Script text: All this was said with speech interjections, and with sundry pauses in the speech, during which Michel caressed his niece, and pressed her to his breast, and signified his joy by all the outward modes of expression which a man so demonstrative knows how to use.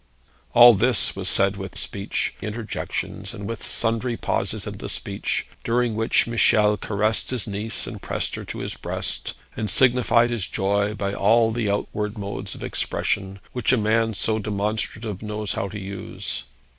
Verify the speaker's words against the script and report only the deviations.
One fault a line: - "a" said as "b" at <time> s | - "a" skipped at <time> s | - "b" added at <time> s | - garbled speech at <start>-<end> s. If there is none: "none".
none